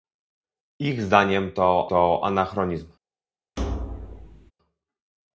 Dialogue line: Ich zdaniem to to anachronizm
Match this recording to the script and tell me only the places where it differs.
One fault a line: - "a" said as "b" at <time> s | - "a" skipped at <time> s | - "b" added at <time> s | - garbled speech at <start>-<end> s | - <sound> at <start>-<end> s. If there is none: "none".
- thud at 3.6-4.5 s